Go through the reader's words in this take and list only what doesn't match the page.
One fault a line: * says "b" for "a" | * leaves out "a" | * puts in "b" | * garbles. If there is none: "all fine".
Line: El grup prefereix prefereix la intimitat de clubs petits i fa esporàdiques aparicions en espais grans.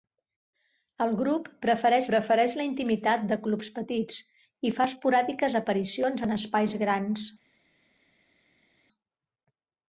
all fine